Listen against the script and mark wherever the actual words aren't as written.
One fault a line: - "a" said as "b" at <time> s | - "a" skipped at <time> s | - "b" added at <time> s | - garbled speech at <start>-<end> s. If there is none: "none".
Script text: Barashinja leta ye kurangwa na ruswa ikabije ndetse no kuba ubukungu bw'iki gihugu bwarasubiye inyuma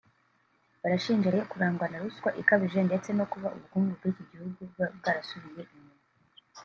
- "leta" skipped at 1.3 s